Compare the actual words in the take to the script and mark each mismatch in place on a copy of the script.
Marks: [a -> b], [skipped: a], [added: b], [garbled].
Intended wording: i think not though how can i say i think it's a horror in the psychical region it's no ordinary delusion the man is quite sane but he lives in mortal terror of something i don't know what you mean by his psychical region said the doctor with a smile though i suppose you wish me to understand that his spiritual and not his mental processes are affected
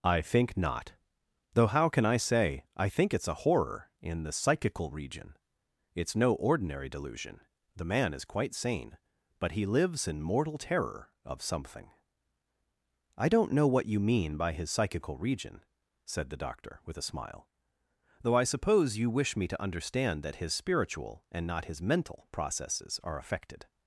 i think not though how can i say i think it's a horror in the psychical region it's no ordinary delusion the man is quite sane but he lives in mortal terror of something i don't know what you mean by his psychical region said the doctor with a smile though i suppose you wish me to understand that his spiritual and not his mental processes are affected